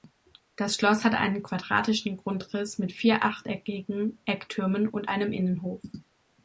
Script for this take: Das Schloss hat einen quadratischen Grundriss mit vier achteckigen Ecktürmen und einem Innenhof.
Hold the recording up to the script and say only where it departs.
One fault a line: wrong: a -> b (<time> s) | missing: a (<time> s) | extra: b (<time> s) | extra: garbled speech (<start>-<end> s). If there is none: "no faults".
no faults